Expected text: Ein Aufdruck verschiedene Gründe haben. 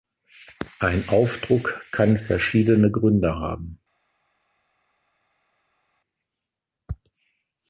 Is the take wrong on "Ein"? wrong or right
right